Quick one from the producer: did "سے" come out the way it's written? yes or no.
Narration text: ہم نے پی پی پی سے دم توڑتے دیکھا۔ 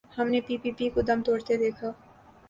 no